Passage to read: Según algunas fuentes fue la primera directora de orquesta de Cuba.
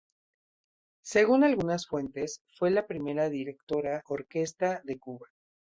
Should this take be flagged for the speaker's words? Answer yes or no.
yes